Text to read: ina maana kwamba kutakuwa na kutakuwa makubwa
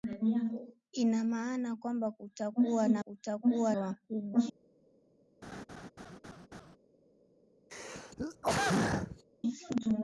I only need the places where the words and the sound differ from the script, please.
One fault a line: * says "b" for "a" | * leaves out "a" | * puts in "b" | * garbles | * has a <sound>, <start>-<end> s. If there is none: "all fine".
* has a laugh, 5.4-6.8 s
* has a throat clearing, 7.7-9.2 s